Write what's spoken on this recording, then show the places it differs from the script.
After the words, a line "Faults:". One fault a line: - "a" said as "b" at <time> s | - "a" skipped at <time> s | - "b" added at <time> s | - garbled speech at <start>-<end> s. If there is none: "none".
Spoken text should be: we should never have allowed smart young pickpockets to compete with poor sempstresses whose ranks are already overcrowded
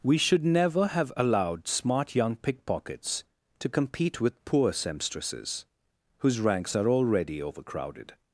we should never have allowed smart young pickpockets to compete with poor sempstresses whose ranks are already overcrowded
Faults:
none